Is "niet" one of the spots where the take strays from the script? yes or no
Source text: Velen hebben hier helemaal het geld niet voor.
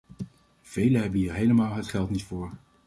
no